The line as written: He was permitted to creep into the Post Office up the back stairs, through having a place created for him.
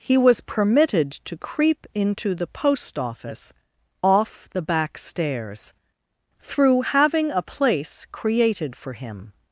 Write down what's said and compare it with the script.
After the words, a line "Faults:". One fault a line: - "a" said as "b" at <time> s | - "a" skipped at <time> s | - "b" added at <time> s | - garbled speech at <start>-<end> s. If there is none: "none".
He was permitted to creep into the Post Office off the back stairs, through having a place created for him.
Faults:
- "up" said as "off" at 4.0 s